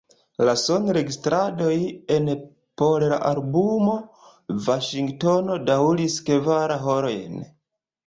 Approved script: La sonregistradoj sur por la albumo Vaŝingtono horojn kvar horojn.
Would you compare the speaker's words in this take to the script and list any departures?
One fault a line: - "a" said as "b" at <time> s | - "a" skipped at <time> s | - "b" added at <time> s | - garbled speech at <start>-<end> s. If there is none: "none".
- "sur" said as "en" at 2.1 s
- "horojn" said as "daŭris" at 5.7 s